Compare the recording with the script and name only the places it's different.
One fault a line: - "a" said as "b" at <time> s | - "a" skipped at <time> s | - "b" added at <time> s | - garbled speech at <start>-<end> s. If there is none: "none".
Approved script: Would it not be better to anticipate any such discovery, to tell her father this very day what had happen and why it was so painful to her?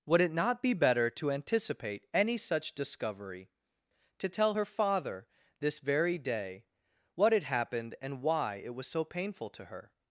- "happen" said as "happened" at 7.4 s